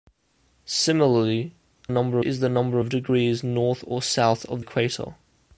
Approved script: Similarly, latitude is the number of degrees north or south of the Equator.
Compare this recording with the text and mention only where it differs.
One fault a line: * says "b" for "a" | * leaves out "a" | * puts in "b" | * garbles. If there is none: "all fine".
* says "number" for "latitude"
* leaves out "the"